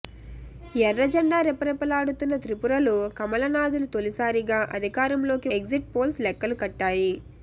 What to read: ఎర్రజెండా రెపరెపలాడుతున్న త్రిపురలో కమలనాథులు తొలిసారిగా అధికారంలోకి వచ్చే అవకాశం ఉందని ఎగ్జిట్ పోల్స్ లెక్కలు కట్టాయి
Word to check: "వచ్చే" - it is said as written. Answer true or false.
false